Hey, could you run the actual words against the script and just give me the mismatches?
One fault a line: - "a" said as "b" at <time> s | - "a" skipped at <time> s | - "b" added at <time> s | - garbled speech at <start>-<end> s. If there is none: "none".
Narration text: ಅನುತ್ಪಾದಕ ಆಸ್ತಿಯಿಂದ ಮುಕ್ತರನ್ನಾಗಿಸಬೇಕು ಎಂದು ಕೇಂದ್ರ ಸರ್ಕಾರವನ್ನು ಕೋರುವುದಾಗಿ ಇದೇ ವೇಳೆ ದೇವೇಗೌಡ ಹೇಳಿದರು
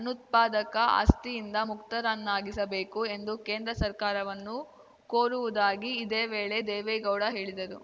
none